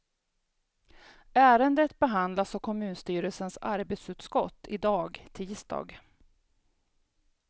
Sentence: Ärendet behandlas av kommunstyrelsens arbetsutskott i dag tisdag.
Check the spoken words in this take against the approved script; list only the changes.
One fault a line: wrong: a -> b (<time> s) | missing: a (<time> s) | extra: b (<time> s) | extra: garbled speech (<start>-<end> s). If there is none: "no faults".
no faults